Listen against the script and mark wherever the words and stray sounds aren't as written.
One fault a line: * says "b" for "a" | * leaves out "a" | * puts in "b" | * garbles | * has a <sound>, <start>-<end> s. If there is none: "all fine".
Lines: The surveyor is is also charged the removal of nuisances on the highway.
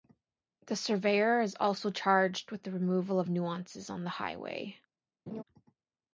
* leaves out "is"
* puts in "with"
* has a laugh, 5.3-5.4 s